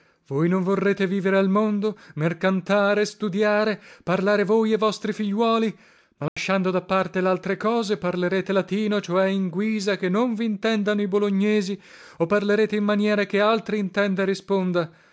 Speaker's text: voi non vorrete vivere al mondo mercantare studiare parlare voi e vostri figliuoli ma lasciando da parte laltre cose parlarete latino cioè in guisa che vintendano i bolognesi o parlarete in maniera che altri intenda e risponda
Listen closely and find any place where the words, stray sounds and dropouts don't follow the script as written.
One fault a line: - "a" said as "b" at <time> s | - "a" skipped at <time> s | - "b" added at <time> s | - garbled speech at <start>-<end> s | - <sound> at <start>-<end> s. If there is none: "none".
- dropout at 6.3-6.4 s
- "non" added at 10.1 s